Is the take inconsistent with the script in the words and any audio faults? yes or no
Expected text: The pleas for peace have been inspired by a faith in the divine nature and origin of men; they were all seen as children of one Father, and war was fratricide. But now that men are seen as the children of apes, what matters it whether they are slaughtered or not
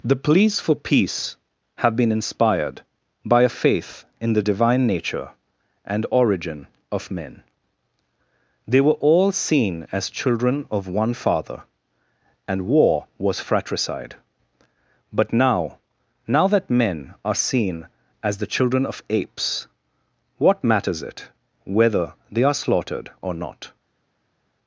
yes